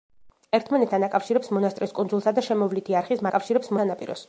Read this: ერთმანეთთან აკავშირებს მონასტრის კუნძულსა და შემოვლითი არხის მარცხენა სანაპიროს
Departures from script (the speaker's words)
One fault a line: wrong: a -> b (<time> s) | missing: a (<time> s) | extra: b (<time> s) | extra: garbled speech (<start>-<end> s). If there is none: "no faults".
wrong: მარცხენა -> აკავშირებს (3.3 s)